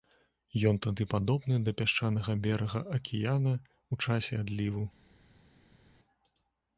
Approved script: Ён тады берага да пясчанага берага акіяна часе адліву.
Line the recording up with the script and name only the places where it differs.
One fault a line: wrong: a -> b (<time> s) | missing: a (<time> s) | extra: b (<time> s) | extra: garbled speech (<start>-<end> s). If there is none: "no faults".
wrong: берага -> падобны (1.1 s)
extra: ў (3.9 s)